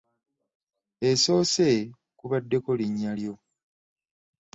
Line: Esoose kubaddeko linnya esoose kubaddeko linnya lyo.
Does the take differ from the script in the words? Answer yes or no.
yes